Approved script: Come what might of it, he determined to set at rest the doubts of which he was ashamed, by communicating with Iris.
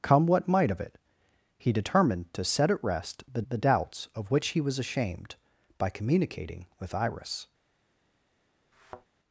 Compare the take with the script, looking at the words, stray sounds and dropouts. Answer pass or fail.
fail